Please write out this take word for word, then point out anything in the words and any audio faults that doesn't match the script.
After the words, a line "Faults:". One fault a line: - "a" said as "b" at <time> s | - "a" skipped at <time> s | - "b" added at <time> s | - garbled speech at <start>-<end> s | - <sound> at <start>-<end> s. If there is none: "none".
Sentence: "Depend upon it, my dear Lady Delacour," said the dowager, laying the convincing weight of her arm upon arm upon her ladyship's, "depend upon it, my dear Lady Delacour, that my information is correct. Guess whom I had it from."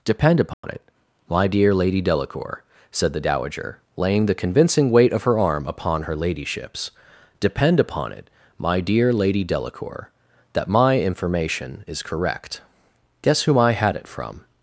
"Depend upon it, my dear Lady Delacour," said the dowager, laying the convincing weight of her arm upon her ladyship's, "depend upon it, my dear Lady Delacour, that my information is correct. Guess whom I had it from."
Faults:
- dropout at 0.5-0.6 s
- "arm upon" skipped at 6.0 s